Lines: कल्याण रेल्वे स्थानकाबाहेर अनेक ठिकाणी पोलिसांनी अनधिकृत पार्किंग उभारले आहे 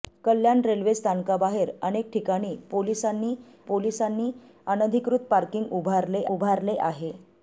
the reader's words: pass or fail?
fail